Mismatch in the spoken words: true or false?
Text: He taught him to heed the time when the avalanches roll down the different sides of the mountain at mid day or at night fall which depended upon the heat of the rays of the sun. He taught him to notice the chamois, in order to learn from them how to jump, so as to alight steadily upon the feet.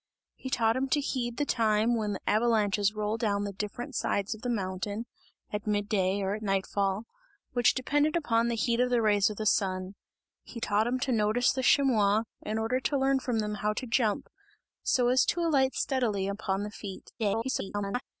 true